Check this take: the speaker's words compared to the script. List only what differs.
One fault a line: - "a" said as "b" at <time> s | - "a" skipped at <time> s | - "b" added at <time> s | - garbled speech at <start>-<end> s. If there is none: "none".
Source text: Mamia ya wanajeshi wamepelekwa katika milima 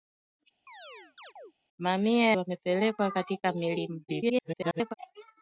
- "ya wanajeshi" skipped at 2.3 s
- garbled speech at 4.1-4.9 s